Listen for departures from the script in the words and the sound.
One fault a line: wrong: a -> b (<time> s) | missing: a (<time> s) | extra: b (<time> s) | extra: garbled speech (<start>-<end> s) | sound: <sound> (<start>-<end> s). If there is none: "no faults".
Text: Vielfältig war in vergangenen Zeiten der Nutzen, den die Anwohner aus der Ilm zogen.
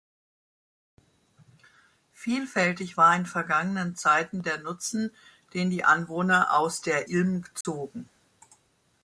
sound: dropout (7.6-7.6 s)